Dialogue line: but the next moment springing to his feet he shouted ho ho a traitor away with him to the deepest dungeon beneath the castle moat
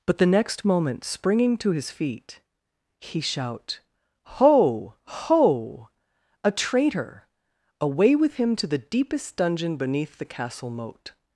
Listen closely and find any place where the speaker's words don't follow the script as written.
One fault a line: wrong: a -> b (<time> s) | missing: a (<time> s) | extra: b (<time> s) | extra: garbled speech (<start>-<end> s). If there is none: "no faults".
wrong: shouted -> shout (3.2 s)